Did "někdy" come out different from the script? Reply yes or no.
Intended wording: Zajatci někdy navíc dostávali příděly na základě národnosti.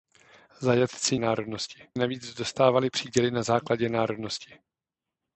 yes